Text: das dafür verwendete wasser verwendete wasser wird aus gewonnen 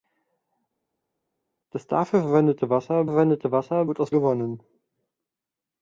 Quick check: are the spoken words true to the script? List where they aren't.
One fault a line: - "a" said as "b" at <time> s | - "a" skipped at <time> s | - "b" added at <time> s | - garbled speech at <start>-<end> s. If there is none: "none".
none